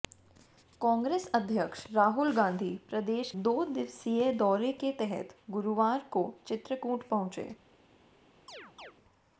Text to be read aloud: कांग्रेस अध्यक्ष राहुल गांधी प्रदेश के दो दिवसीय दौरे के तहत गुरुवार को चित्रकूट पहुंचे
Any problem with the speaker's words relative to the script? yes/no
yes